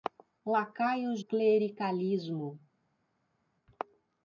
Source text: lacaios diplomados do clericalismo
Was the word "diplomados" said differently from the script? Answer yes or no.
yes